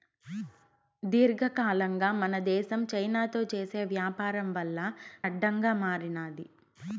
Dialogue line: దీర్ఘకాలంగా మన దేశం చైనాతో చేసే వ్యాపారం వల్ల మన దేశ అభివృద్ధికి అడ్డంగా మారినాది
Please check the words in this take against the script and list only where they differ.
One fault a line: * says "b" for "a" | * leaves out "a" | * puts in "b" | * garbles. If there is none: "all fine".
* leaves out "మన దేశ అభివృద్ధికి"